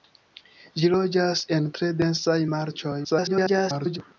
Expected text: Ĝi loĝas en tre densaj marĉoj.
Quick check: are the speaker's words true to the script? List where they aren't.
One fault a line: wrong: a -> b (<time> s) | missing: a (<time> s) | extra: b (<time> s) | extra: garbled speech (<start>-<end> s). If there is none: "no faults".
extra: garbled speech (3.0-4.0 s)